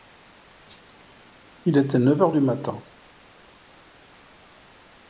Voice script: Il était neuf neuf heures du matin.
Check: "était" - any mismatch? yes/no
no